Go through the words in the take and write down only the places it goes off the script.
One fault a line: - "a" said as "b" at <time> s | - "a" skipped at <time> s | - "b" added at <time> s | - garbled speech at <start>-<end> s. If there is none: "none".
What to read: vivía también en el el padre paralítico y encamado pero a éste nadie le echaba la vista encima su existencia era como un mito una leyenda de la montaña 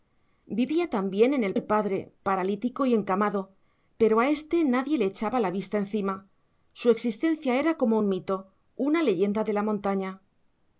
none